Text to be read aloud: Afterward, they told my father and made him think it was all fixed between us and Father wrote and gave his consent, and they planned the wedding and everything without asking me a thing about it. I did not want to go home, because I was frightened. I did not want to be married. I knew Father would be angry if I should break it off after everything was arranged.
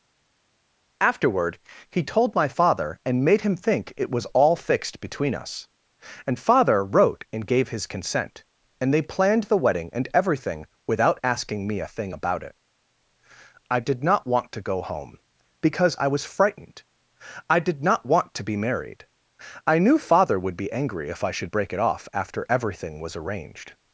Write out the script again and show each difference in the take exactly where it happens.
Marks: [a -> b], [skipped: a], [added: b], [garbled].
Afterward, [they -> he] told my father and made him think it was all fixed between us and Father wrote and gave his consent, and they planned the wedding and everything without asking me a thing about it. I did not want to go home, because I was frightened. I did not want to be married. I knew Father would be angry if I should break it off after everything was arranged.